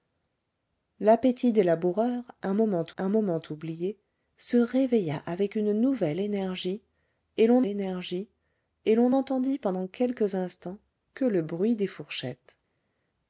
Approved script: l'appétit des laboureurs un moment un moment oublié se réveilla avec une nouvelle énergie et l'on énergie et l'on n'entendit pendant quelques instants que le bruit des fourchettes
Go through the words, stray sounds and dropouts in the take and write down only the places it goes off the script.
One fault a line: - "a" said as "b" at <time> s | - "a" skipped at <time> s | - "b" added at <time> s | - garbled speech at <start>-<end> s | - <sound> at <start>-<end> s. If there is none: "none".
none